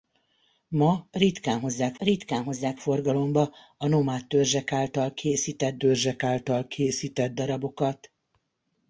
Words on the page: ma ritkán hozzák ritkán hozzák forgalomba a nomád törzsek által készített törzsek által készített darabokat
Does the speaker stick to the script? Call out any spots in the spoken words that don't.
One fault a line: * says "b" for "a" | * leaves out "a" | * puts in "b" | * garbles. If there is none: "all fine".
all fine